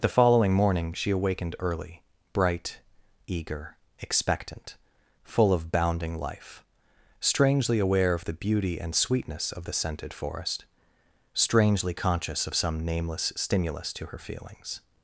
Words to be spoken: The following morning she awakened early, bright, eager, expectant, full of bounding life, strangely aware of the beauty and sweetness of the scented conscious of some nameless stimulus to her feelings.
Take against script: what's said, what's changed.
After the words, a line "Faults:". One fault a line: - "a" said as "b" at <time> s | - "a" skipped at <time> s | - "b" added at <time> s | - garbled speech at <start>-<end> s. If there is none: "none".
The following morning she awakened early, bright, eager, expectant, full of bounding life, strangely aware of the beauty and sweetness of the scented forest, strangely conscious of some nameless stimulus to her feelings.
Faults:
- "forest strangely" added at 10.1 s